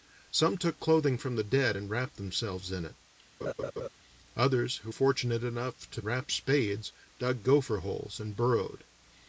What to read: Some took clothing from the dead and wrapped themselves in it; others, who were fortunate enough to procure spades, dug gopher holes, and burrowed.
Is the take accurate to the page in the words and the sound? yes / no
no